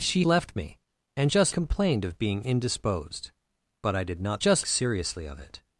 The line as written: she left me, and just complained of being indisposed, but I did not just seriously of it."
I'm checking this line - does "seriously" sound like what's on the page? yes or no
yes